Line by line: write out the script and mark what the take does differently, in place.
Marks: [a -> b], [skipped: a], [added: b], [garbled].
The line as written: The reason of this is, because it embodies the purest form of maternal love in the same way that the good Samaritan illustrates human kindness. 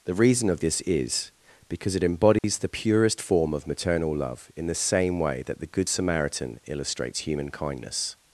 The reason of this is, because it embodies the purest form of maternal love in the same way that the good Samaritan illustrates human kindness.